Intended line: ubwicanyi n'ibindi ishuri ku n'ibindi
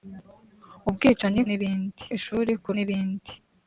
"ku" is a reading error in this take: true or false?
false